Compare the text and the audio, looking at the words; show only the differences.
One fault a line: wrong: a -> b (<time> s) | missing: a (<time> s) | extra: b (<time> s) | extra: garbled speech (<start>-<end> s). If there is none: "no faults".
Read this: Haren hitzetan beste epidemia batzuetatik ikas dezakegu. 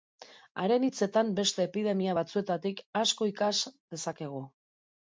extra: asko (3.0 s)